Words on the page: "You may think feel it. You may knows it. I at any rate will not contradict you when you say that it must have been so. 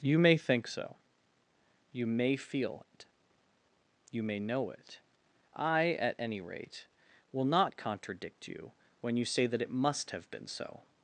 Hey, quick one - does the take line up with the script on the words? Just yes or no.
no